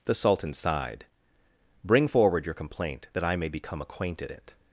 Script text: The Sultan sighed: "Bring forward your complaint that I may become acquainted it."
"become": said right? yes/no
yes